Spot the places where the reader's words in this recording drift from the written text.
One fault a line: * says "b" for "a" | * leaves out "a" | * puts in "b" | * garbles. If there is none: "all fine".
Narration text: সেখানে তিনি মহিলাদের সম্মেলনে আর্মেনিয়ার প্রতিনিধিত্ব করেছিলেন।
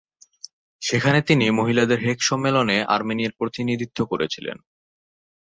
* puts in "হেগ"